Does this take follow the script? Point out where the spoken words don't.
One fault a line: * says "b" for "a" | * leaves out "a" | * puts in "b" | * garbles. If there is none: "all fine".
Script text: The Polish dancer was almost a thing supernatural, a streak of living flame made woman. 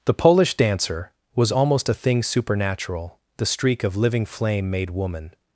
* says "the" for "a"